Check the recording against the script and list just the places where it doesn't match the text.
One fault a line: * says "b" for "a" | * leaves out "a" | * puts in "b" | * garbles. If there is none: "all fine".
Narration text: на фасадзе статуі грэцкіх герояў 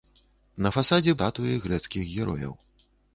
all fine